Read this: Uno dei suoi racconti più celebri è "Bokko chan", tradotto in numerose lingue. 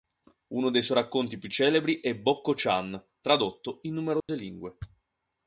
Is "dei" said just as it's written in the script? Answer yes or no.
yes